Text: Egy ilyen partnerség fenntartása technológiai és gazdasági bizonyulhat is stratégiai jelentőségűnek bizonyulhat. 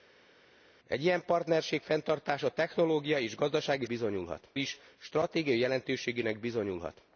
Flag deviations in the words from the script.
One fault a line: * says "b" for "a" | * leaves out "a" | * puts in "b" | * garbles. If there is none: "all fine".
all fine